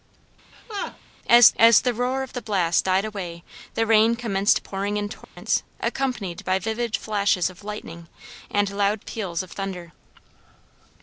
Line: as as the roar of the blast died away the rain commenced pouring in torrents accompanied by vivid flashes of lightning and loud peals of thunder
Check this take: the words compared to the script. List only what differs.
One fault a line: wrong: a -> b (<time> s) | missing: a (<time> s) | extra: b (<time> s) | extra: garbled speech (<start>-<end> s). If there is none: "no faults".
no faults